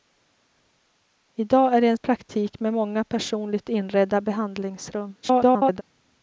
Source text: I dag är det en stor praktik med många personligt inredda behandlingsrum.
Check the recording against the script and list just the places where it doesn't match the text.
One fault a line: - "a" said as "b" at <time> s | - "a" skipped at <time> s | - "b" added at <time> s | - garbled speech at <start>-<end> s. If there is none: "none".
- "stor" skipped at 2.0 s
- garbled speech at 5.2-5.8 s